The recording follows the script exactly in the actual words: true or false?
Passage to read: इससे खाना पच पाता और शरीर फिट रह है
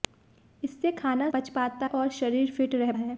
true